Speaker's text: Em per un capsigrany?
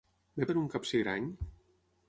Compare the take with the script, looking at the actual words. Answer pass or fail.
pass